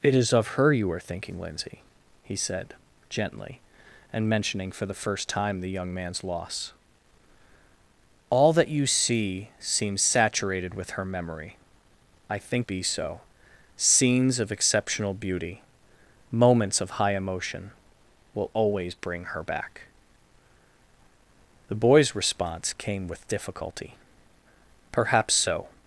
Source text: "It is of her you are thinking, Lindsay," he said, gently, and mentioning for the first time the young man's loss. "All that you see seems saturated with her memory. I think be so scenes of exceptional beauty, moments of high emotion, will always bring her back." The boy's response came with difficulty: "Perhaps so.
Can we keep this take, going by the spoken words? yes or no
yes